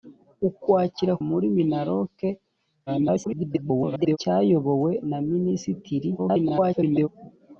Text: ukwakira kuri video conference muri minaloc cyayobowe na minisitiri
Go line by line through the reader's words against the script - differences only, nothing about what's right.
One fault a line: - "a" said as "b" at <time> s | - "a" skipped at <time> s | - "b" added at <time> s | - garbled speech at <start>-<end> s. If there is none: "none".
- "kuri video conference" skipped at 1.1 s
- garbled speech at 2.9-4.2 s
- garbled speech at 6.2-7.1 s